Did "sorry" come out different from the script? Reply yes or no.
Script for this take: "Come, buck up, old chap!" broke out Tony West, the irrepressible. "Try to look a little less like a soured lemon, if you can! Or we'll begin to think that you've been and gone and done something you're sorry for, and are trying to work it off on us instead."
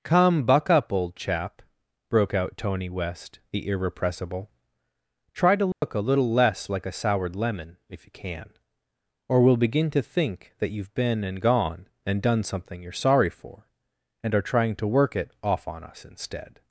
no